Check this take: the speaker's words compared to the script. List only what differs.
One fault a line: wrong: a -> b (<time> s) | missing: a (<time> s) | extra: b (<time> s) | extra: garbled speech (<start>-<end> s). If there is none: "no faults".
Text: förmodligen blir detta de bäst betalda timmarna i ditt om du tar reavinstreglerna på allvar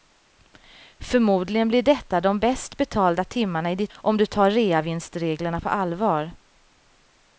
no faults